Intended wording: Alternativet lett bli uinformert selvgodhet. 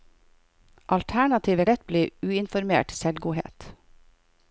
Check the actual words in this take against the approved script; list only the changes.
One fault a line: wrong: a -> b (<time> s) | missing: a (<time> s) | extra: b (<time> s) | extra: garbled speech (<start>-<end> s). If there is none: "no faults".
no faults